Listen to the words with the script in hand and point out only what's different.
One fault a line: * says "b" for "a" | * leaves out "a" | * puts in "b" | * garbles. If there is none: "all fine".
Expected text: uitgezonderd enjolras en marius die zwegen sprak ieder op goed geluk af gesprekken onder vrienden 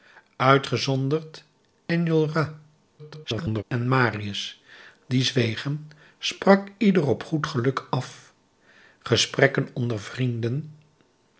* garbles